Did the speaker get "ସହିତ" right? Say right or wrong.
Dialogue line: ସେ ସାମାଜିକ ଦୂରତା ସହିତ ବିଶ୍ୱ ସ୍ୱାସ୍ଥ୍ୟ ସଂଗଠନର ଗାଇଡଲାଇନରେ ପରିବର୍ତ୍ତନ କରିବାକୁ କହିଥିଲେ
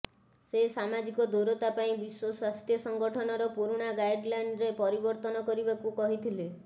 wrong